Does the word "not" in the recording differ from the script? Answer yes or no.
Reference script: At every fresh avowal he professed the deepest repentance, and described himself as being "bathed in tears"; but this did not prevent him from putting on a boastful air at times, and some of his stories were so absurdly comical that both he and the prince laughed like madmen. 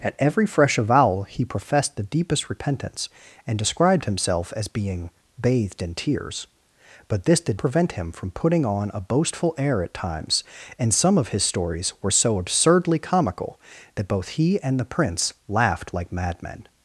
yes